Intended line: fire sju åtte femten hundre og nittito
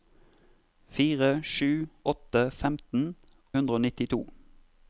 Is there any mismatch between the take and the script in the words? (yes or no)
no